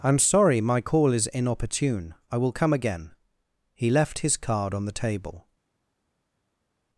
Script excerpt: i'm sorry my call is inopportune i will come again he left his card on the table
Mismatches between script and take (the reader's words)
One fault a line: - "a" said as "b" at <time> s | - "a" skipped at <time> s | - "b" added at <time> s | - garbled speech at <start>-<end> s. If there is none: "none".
none